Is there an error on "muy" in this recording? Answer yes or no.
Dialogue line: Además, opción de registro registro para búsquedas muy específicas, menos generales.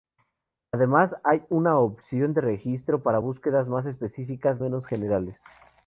yes